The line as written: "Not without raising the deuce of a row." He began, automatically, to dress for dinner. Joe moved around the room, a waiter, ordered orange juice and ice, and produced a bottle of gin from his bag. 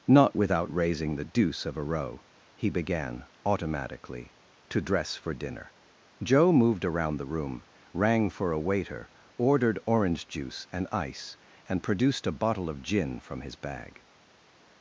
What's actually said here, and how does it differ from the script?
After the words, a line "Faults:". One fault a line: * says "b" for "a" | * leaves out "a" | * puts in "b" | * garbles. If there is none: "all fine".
"Not without raising the deuce of a row." He began, automatically, to dress for dinner. Joe moved around the room, rang for a waiter, ordered orange juice and ice, and produced a bottle of gin from his bag.
Faults:
* puts in "rang for"